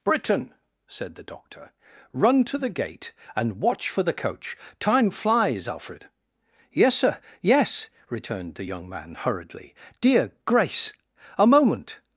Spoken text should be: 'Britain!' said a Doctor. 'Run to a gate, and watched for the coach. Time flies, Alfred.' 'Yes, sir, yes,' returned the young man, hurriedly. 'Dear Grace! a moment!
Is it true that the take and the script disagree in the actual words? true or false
true